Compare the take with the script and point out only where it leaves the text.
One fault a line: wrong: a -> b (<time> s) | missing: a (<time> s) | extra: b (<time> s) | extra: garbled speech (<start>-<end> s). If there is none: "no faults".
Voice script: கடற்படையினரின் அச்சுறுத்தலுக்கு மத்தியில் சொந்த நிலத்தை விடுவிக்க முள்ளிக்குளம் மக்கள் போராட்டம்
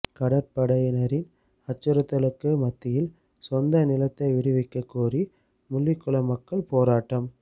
extra: கோரி (4.9 s)